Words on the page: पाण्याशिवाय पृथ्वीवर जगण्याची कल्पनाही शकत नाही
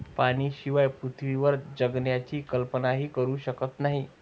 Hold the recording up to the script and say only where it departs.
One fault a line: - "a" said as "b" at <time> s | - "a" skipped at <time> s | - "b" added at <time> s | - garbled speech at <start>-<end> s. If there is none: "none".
- "करू" added at 3.1 s